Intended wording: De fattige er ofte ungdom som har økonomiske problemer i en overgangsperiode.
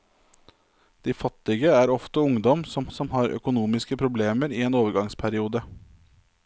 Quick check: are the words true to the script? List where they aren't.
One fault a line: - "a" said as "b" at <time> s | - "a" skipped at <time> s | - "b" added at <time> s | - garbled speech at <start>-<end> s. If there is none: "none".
- "som" added at 2.9 s